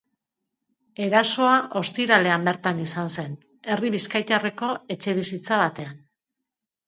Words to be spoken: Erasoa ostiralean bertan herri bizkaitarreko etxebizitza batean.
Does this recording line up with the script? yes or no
no